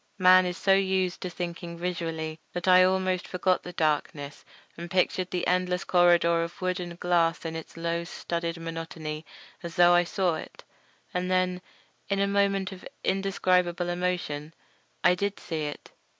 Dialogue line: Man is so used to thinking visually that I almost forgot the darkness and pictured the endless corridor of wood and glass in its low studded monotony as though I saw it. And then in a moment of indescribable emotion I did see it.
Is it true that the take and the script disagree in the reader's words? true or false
false